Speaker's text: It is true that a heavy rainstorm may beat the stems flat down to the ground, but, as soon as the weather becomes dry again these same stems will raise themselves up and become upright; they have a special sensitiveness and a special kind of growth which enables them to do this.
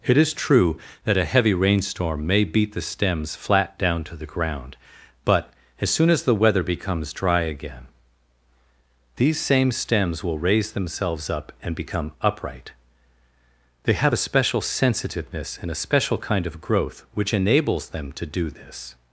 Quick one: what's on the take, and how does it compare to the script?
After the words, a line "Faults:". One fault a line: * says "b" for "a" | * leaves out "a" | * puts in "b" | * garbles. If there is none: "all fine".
It is true that a heavy rainstorm may beat the stems flat down to the ground, but, as soon as the weather becomes dry again these same stems will raise themselves up and become upright; they have a special sensitiveness and a special kind of growth which enables them to do this.
Faults:
all fine